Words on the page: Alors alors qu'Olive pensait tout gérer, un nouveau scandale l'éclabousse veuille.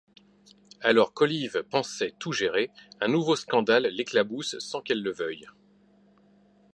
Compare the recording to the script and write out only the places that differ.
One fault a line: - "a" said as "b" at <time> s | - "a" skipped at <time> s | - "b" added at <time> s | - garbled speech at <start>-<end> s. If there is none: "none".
- "alors" skipped at 1.1 s
- "sans qu'elle le" added at 4.6 s